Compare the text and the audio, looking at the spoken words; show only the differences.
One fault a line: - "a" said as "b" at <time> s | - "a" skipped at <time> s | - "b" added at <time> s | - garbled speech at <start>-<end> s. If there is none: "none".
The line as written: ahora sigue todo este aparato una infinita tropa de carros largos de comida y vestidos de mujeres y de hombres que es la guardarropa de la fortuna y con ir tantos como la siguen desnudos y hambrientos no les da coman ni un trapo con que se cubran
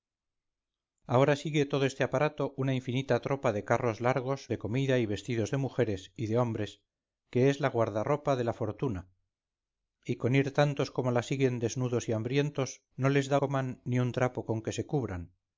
none